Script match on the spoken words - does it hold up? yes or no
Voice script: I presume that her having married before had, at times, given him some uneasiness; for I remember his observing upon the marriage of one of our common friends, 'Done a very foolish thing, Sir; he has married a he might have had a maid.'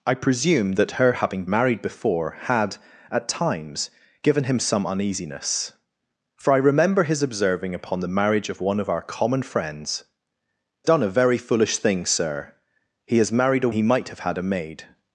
yes